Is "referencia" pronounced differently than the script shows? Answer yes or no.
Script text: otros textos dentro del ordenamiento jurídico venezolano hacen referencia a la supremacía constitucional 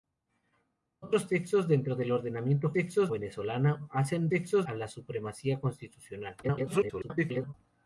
yes